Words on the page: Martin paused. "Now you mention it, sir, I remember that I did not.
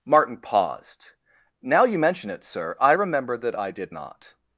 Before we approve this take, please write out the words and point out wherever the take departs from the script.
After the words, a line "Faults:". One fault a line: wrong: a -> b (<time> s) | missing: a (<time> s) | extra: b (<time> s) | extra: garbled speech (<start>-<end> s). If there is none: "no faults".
Martin paused. "Now you mention it, sir, I remember that I did not.
Faults:
no faults